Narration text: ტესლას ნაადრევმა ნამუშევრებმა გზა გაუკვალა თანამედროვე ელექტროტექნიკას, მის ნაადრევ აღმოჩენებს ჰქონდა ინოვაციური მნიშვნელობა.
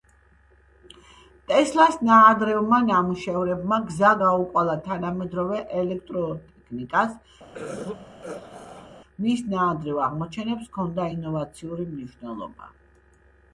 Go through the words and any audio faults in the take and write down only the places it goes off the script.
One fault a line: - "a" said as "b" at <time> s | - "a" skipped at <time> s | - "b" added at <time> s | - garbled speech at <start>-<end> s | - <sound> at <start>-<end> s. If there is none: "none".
- throat clearing at 7.5-9.0 s